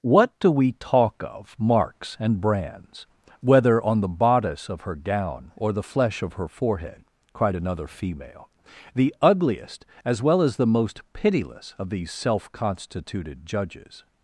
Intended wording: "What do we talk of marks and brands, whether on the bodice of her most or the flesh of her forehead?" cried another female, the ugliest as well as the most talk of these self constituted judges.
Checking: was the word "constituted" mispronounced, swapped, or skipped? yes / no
no